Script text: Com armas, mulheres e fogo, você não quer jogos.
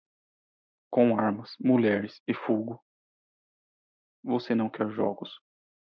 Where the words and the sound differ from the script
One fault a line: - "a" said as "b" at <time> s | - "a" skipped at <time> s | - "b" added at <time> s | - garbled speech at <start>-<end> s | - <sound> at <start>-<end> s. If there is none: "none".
none